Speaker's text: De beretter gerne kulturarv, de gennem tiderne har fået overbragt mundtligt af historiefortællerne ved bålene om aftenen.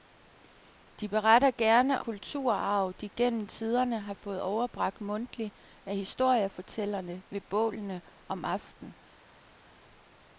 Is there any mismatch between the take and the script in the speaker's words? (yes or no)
no